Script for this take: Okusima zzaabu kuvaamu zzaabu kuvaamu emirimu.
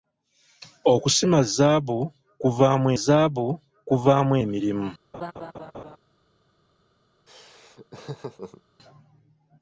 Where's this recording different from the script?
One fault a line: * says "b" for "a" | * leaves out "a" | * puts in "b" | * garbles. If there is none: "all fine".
all fine